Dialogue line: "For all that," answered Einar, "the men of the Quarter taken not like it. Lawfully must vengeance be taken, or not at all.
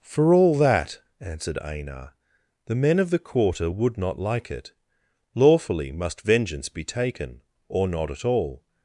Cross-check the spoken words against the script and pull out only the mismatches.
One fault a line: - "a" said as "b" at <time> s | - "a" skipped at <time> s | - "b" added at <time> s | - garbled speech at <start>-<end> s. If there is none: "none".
- "taken" said as "would" at 3.7 s